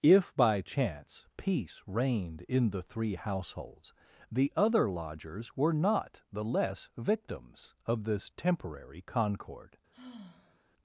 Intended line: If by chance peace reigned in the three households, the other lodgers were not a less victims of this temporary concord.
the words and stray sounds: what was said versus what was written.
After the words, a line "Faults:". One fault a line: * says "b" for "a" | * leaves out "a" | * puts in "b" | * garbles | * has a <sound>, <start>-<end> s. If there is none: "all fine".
If by chance peace reigned in the three households, the other lodgers were not the less victims of this temporary concord.
Faults:
* says "the" for "a"
* has a sigh, 9.9-10.6 s